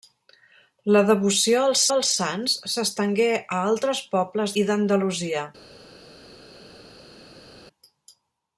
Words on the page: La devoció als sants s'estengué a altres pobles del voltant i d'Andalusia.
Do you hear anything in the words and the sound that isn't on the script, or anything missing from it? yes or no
yes